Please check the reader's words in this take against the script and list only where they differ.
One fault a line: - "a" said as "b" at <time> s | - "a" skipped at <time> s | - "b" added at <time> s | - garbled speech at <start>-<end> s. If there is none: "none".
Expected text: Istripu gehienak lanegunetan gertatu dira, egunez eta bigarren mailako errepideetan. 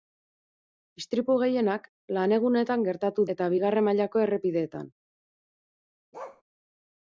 - "dira egunez" skipped at 3.3 s